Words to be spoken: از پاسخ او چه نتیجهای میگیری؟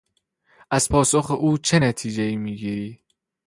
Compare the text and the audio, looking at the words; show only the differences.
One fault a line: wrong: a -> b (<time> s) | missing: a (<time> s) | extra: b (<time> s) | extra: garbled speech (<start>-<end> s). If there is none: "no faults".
no faults